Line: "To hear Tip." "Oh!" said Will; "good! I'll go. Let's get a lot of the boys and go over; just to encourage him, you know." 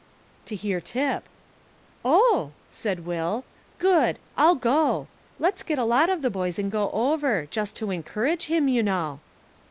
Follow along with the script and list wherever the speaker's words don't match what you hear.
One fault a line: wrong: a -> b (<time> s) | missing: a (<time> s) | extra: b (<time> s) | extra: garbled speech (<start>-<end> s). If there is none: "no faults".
no faults